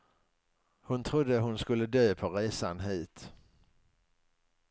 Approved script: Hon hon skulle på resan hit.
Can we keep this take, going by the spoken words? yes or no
no